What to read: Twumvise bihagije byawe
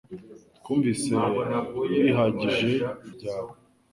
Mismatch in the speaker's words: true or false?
false